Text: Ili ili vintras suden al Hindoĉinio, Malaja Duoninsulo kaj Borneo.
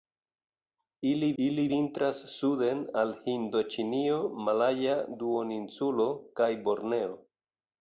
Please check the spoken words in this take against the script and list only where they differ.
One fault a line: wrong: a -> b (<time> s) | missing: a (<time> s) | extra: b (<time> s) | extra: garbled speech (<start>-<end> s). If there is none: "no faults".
no faults